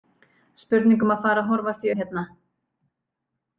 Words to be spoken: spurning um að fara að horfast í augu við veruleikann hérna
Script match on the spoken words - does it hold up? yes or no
no